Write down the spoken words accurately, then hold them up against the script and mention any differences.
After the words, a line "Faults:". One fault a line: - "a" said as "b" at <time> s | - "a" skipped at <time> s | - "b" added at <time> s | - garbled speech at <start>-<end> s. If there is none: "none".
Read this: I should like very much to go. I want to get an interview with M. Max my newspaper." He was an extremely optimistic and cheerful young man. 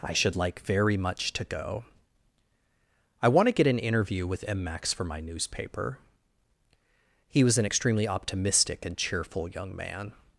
I should like very much to go. I want to get an interview with M. Max for my newspaper." He was an extremely optimistic and cheerful young man.
Faults:
- "for" added at 4.9 s